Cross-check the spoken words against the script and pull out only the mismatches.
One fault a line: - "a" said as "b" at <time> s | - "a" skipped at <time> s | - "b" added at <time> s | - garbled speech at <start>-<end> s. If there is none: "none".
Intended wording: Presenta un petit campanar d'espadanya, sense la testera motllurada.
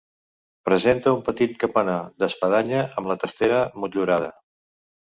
- "sense" said as "amb" at 3.0 s